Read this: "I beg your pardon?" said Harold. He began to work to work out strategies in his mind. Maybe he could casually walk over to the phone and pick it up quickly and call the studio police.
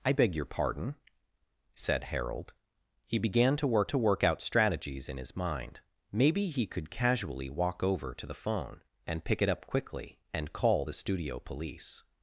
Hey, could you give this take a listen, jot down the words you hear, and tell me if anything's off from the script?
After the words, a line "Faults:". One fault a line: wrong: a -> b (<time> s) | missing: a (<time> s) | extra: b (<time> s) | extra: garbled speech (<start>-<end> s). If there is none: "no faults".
"I beg your pardon?" said Harold. He began to work to work out strategies in his mind. Maybe he could casually walk over to the phone and pick it up quickly and call the studio police.
Faults:
no faults